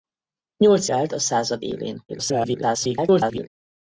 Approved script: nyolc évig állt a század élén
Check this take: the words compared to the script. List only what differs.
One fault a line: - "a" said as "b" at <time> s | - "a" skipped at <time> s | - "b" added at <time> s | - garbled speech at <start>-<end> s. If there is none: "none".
- "évig" skipped at 0.9 s
- garbled speech at 2.1-3.5 s